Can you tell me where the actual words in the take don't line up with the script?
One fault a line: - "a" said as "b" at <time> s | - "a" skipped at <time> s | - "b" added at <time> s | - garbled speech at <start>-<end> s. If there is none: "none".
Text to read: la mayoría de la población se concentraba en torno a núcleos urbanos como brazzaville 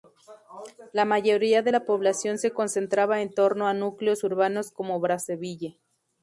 none